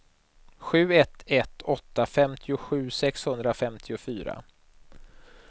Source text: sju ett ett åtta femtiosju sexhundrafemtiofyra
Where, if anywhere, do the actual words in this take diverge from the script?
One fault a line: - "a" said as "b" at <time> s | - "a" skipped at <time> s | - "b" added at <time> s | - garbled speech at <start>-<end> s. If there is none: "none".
none